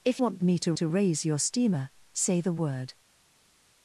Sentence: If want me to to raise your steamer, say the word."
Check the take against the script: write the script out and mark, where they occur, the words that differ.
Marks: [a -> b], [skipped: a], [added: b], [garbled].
If want me to to raise your steamer, say the word."